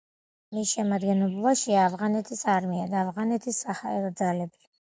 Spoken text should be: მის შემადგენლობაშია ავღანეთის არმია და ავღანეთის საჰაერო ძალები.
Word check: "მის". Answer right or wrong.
right